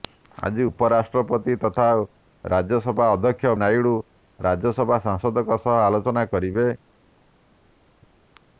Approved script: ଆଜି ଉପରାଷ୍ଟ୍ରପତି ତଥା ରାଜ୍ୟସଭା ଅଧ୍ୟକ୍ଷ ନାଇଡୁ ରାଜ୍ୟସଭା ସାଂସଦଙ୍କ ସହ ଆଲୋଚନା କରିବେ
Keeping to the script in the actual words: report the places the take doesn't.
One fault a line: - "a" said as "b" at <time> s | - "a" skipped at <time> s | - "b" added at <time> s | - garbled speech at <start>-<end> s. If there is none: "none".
none